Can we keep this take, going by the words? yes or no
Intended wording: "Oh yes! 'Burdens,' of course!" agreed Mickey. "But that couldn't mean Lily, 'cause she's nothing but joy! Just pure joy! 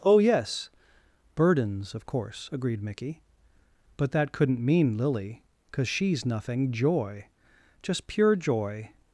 no